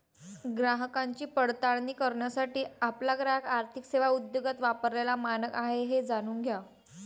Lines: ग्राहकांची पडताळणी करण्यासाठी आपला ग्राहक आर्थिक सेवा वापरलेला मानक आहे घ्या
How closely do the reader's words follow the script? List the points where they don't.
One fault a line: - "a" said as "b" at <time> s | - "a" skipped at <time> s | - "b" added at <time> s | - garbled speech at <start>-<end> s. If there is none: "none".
- "उद्योगात" added at 4.1 s
- "हे जाणून" added at 5.8 s